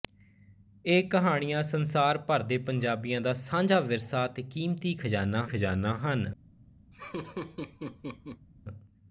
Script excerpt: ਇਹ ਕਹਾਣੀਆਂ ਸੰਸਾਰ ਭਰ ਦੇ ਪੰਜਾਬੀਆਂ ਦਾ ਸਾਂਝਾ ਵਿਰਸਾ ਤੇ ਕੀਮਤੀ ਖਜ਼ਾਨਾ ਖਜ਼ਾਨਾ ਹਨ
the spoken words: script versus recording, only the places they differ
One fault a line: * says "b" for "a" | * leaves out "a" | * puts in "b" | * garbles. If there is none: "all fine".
all fine